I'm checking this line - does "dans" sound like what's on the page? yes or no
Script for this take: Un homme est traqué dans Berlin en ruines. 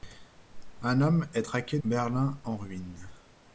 no